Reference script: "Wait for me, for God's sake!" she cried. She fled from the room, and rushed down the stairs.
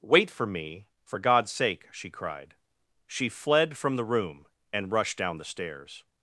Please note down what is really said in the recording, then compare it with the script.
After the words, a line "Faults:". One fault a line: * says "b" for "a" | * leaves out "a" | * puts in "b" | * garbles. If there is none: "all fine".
"Wait for me, for God's sake!" she cried. She fled from the room, and rushed down the stairs.
Faults:
all fine